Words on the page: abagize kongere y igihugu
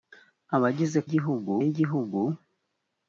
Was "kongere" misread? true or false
true